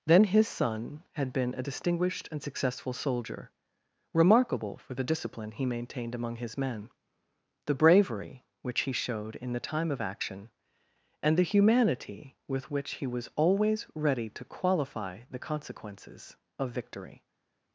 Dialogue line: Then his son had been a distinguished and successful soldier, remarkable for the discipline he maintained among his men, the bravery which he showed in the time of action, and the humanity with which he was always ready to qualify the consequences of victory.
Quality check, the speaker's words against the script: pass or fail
pass